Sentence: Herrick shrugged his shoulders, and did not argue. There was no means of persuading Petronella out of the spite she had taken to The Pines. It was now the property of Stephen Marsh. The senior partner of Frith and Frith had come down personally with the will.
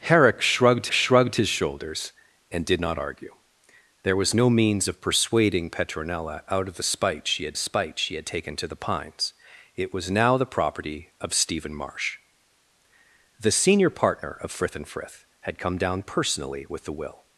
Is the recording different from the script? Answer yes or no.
yes